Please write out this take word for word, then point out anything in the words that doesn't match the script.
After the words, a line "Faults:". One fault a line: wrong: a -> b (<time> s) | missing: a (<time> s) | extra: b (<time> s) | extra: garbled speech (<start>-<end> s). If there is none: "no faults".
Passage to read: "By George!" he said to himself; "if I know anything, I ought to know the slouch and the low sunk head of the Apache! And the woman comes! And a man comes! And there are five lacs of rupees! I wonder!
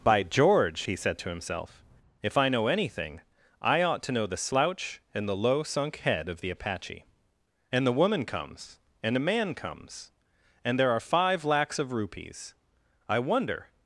"By George!" he said to himself; "if I know anything, I ought to know the slouch and the low sunk head of the Apache! And the woman comes! And a man comes! And there are five lacs of rupees! I wonder!
Faults:
no faults